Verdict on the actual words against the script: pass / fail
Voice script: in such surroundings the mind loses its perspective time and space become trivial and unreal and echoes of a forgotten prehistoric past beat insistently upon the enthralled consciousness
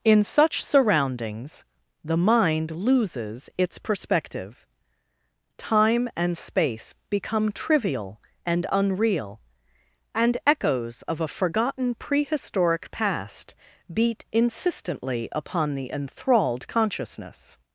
pass